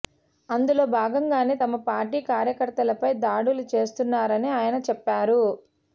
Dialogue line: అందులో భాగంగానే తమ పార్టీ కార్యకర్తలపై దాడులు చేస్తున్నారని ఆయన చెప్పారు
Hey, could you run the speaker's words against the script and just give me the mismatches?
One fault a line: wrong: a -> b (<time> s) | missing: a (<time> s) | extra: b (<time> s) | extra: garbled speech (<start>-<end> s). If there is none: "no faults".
no faults